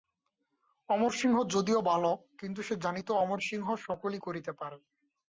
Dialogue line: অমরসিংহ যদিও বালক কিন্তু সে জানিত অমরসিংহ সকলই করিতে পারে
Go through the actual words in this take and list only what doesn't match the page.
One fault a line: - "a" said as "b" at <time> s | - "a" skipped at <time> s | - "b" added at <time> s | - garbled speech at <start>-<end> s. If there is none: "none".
none